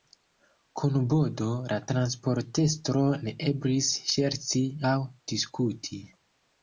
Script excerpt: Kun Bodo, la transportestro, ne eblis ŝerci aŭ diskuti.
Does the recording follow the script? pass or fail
pass